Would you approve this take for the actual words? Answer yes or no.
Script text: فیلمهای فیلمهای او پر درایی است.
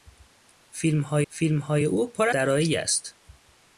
yes